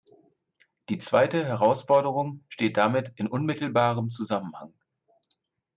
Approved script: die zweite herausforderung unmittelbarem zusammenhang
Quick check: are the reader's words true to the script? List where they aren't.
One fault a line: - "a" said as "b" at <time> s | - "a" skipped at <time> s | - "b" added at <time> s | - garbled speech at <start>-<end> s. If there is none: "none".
- "steht damit in" added at 2.5 s